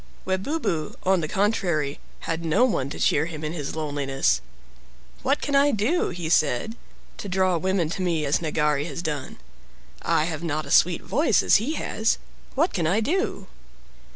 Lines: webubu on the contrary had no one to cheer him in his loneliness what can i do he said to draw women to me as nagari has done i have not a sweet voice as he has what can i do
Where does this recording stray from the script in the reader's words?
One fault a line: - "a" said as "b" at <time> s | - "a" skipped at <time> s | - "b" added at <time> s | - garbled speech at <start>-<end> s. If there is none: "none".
none